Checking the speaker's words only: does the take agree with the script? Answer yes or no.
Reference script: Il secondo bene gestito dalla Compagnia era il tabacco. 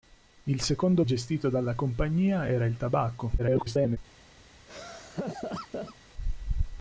no